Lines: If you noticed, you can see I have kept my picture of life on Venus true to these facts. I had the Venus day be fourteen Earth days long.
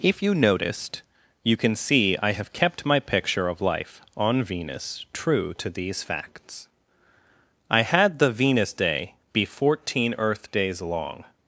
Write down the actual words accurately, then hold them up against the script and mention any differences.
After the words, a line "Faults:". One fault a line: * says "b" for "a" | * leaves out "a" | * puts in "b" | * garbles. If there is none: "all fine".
If you noticed, you can see I have kept my picture of life on Venus true to these facts. I had the Venus day be fourteen Earth days long.
Faults:
all fine